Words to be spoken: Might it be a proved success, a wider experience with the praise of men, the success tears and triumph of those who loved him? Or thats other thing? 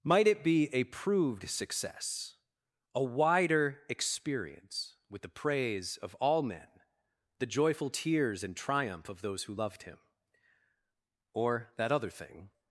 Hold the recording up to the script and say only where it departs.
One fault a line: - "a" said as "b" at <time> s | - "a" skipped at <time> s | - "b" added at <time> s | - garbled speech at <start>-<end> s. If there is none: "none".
- "all" added at 6.2 s
- "success" said as "joyful" at 7.5 s
- "thats" said as "that" at 11.8 s